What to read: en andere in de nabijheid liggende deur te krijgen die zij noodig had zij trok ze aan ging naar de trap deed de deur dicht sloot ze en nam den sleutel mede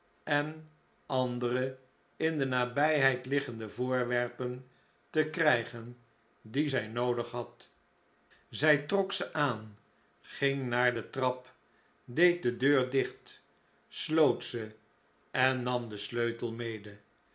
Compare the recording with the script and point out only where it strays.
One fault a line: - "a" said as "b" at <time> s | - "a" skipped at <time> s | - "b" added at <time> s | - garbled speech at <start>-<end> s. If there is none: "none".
- "deur" said as "voorwerpen" at 3.7 s